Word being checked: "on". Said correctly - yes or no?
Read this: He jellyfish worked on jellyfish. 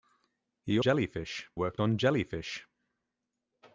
yes